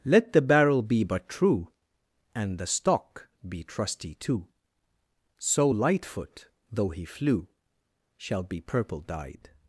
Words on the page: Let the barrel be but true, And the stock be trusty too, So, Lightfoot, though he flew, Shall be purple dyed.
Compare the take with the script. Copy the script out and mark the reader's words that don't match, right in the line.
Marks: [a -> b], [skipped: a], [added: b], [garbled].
Let the barrel be but true, And the stock be trusty too, So, Lightfoot, though he flew, Shall be purple dyed.